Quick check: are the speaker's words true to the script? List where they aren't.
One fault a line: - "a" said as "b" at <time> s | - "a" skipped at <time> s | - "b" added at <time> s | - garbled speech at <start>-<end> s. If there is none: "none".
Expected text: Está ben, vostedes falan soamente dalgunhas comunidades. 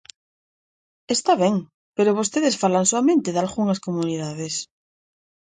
- "pero" added at 1.9 s